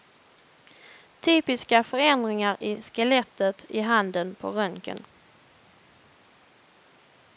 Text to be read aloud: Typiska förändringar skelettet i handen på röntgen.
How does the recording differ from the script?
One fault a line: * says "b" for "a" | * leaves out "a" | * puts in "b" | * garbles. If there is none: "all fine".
* puts in "i"